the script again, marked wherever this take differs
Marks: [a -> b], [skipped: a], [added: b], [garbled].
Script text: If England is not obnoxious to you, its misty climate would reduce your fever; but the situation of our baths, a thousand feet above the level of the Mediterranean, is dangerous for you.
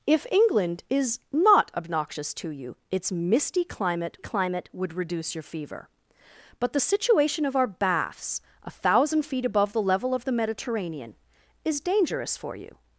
If England is not obnoxious to you, its misty climate [added: climate] would reduce your fever; but the situation of our baths, a thousand feet above the level of the Mediterranean, is dangerous for you.